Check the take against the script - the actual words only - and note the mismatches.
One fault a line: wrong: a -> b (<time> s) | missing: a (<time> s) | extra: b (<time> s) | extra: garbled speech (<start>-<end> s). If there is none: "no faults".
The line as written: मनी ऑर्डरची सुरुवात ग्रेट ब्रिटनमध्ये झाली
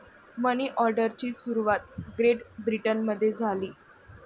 no faults